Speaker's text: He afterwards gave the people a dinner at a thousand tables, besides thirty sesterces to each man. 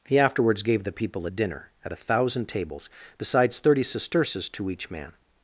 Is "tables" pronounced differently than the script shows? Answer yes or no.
no